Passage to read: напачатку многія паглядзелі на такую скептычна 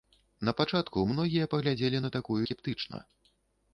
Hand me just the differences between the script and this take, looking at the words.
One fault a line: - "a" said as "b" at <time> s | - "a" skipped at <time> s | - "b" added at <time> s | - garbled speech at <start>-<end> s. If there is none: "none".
none